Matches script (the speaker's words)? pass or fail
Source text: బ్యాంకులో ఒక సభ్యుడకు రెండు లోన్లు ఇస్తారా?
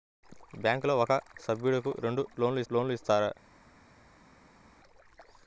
fail